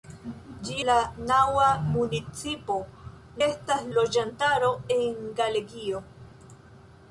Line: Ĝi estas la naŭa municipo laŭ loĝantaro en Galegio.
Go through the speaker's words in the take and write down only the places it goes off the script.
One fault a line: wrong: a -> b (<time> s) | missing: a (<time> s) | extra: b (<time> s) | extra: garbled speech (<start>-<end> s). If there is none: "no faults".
missing: estas (0.8 s)
wrong: laŭ -> estas (3.5 s)